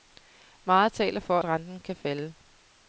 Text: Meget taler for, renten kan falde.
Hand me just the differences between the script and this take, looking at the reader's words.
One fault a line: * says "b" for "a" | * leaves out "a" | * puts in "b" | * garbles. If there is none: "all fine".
all fine